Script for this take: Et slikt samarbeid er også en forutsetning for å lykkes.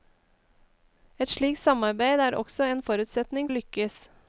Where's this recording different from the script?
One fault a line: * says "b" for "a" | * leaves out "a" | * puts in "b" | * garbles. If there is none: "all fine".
* leaves out "for"